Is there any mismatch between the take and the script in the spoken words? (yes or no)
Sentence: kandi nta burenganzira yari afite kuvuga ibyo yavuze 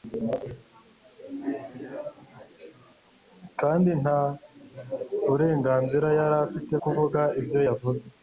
no